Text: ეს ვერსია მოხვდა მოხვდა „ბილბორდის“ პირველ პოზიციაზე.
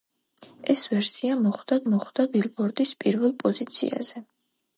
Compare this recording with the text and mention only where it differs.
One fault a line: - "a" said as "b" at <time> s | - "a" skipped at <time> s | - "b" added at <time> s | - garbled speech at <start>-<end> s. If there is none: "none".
none